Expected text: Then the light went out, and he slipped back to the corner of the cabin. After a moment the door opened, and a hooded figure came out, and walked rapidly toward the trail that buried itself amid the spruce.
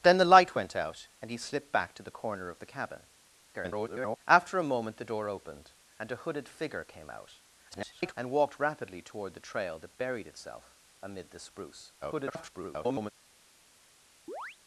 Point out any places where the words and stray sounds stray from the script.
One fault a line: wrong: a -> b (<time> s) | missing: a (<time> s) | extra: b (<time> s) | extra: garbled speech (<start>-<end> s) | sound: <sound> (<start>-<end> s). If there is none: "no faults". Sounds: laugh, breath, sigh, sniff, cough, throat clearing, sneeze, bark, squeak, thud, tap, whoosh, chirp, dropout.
extra: garbled speech (3.5-4.2 s)
extra: garbled speech (7.7-8.1 s)
extra: garbled speech (12.0-13.1 s)
sound: chirp (14.3-14.6 s)